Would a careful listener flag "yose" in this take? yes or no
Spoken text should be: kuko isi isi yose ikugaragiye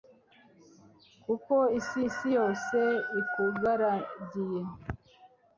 no